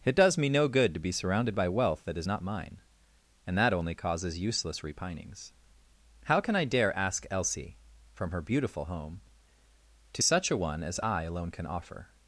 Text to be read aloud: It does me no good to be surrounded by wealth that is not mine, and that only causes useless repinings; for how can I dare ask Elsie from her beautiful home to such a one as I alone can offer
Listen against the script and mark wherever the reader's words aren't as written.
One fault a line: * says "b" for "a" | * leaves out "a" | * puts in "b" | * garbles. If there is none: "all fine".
* leaves out "for"